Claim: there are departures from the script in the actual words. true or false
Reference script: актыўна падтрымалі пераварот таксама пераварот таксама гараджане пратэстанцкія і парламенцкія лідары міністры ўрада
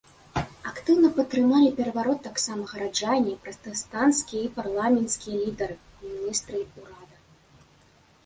true